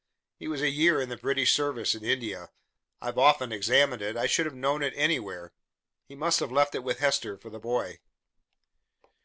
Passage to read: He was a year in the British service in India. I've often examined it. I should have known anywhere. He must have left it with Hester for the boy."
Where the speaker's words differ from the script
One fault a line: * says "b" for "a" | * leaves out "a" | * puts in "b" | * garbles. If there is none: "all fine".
* puts in "it"